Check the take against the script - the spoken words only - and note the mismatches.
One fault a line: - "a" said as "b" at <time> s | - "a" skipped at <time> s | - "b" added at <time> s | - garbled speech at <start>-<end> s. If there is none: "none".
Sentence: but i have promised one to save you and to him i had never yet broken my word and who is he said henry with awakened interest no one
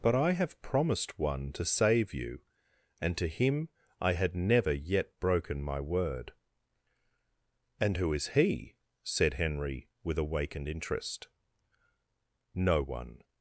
none